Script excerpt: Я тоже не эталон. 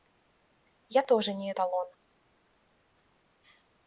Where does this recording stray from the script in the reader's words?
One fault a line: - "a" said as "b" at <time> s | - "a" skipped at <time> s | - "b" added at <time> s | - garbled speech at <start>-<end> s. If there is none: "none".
none